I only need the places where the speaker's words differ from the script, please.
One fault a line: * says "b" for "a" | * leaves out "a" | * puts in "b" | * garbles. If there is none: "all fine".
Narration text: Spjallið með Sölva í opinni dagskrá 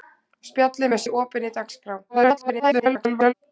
* leaves out "Sölva"
* garbles